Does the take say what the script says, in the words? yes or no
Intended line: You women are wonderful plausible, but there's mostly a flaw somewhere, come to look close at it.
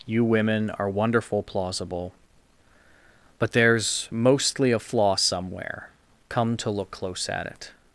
yes